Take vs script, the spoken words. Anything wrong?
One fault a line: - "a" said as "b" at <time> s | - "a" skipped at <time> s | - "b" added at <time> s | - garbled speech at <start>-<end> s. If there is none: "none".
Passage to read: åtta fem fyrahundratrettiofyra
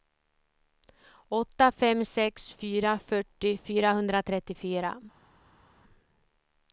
- "sex fyra fyrtio" added at 2.0 s